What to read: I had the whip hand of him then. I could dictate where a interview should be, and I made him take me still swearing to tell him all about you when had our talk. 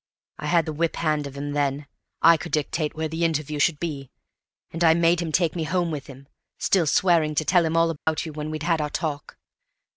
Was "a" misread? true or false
true